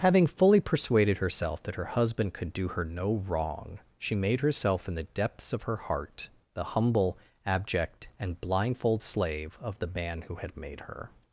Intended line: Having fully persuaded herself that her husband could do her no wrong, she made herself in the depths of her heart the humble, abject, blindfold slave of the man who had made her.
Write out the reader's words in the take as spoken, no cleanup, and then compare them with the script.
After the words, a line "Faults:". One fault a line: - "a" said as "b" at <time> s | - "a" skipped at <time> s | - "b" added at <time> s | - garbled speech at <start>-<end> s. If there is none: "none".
Having fully persuaded herself that her husband could do her no wrong, she made herself in the depths of her heart the humble, abject, and blindfold slave of the man who had made her.
Faults:
- "and" added at 8.2 s